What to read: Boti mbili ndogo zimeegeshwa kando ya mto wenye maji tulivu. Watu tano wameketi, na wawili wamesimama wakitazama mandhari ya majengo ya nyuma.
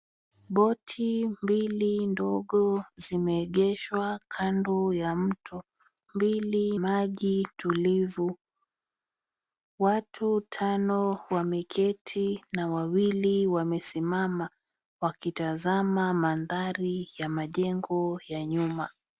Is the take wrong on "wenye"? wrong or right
wrong